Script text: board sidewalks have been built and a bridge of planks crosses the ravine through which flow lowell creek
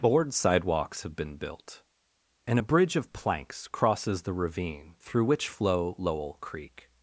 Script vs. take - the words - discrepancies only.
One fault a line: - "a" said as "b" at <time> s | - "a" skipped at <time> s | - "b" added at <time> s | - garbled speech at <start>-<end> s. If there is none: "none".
none